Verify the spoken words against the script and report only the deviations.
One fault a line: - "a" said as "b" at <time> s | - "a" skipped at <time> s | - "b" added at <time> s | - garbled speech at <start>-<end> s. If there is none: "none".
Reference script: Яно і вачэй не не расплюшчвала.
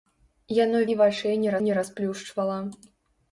none